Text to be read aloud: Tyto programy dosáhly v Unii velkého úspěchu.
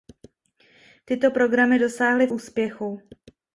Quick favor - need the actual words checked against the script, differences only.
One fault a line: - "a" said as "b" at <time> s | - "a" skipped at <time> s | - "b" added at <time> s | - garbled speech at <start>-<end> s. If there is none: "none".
- "v Unii velkého" skipped at 2.3 s